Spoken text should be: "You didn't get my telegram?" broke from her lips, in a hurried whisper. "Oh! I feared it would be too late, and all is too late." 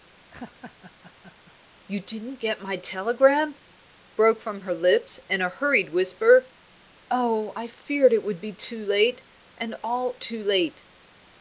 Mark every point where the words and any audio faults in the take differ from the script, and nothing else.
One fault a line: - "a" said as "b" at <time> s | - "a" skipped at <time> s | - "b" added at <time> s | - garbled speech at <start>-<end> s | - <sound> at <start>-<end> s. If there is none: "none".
- laugh at 0.3-1.6 s
- "is" skipped at 10.2 s